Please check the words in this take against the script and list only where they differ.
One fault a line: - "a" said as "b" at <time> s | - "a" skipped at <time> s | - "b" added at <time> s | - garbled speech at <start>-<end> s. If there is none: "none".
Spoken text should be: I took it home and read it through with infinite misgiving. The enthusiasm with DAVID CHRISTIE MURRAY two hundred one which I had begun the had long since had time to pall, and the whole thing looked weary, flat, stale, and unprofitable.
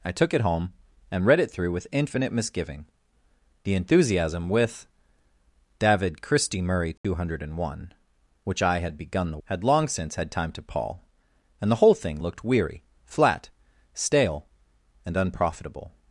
none